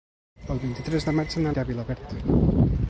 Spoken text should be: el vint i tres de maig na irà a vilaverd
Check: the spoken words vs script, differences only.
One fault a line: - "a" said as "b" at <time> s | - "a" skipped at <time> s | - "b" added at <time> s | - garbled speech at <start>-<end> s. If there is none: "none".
none